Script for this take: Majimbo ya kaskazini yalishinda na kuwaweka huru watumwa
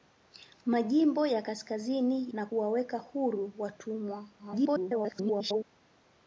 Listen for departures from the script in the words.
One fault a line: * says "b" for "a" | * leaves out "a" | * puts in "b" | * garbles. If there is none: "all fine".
* leaves out "yalishinda"
* garbles